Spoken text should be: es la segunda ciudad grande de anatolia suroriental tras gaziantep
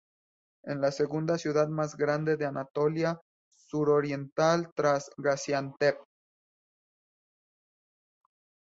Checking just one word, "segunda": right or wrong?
right